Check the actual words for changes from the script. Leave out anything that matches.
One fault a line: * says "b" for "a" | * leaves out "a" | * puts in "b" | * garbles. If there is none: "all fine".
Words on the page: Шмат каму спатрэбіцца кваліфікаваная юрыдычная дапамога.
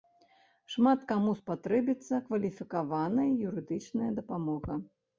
all fine